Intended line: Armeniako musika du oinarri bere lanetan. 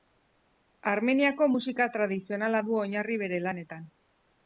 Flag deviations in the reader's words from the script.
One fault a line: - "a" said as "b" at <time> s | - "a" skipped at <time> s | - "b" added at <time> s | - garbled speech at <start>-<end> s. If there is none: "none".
- "tradizionala" added at 2.0 s